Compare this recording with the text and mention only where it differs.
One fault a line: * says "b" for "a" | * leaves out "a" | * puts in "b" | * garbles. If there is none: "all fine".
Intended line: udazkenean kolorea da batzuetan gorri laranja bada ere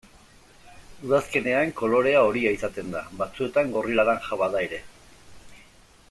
* puts in "horia izaten"